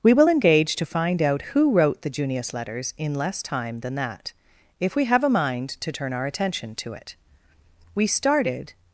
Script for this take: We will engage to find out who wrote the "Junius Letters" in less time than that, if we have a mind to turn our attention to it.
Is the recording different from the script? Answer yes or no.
yes